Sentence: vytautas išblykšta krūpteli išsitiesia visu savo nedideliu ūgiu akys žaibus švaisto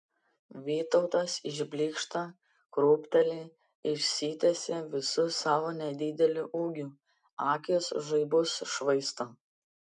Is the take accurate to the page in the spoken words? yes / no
yes